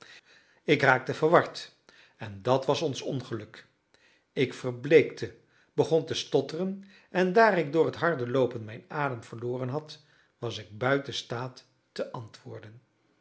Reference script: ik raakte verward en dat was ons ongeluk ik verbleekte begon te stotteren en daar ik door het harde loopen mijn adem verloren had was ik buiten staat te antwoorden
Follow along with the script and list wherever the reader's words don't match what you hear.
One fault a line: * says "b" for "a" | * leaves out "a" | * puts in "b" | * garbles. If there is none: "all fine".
all fine